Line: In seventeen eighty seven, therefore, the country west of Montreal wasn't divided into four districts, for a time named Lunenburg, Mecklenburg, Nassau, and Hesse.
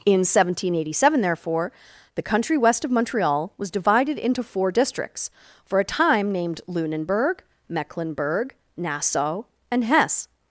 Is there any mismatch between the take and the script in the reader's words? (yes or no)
yes